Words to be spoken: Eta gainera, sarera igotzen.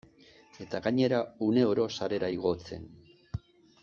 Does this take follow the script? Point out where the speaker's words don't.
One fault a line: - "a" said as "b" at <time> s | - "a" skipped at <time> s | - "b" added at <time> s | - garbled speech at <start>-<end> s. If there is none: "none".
- "uneoro" added at 1.5 s